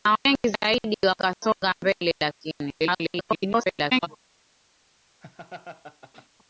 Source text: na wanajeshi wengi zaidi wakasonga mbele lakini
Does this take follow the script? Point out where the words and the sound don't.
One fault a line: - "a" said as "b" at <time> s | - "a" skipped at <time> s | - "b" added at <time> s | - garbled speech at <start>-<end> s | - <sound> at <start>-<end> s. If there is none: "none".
- "wanajeshi" skipped at 0.2 s
- garbled speech at 2.8-4.1 s
- laugh at 5.2-6.3 s